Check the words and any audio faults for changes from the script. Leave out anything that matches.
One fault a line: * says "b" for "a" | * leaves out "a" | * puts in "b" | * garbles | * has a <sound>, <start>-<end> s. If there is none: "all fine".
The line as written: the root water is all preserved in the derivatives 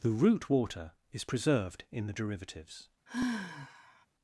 * leaves out "all"
* has a sigh, 3.1-4.1 s